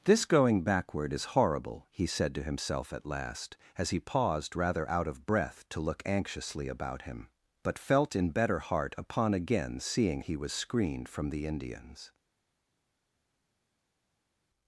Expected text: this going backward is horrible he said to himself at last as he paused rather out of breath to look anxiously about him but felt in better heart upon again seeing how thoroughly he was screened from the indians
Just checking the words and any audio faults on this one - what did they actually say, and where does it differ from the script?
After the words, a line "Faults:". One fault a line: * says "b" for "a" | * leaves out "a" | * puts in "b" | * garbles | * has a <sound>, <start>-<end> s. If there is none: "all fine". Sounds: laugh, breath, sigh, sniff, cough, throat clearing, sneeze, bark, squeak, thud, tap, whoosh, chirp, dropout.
this going backward is horrible he said to himself at last as he paused rather out of breath to look anxiously about him but felt in better heart upon again seeing he was screened from the indians
Faults:
* leaves out "how thoroughly"